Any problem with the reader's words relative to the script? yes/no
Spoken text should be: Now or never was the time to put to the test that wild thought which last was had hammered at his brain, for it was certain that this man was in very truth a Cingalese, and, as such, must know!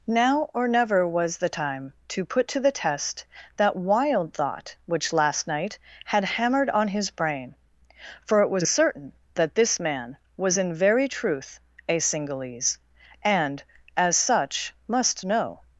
yes